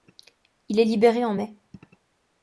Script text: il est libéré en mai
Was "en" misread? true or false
false